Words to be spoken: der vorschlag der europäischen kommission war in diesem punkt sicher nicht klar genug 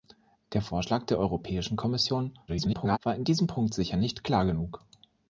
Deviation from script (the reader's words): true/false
true